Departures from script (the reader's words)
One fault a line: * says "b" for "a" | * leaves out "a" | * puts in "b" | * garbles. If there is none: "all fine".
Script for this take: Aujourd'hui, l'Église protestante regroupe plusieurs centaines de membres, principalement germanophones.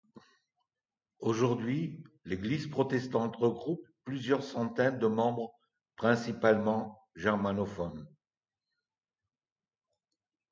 all fine